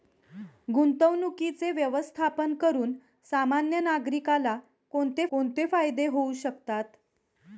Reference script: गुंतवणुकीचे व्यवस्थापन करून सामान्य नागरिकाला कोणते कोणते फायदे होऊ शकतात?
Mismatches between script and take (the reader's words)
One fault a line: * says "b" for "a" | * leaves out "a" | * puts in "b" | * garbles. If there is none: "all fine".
all fine